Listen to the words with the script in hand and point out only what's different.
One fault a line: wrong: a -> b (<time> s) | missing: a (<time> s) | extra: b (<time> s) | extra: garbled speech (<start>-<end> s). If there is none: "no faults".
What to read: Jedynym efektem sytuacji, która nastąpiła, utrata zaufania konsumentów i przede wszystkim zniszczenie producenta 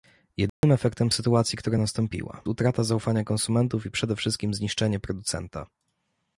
no faults